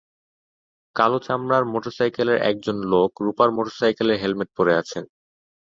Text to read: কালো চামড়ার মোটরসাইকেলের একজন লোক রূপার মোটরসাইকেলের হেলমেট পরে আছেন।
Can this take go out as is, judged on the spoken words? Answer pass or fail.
pass